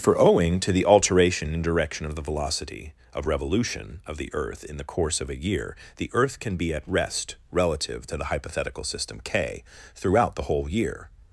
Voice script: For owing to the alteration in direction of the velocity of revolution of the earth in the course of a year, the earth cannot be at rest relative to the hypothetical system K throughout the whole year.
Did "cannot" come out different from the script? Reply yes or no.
yes